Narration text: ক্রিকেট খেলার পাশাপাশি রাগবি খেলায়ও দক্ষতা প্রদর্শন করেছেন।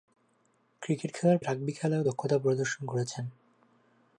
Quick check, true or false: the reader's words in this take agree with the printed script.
false